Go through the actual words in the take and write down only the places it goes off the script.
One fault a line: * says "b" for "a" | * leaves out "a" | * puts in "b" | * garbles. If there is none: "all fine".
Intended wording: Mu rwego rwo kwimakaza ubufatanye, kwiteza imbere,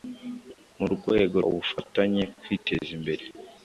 * leaves out "rwo kwimakaza"